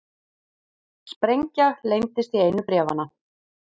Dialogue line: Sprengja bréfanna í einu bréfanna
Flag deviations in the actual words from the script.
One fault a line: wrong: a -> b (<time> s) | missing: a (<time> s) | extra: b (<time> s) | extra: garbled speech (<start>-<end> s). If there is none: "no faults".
wrong: bréfanna -> leyndist (1.9 s)